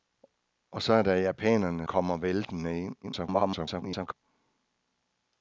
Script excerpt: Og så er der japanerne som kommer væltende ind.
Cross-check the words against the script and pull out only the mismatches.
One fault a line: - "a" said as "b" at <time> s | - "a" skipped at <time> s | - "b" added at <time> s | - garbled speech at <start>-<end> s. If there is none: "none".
- "som" skipped at 1.9 s
- garbled speech at 3.0-4.1 s